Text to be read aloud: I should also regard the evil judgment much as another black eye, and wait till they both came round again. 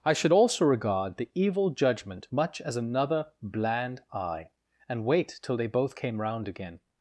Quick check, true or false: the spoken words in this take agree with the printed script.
false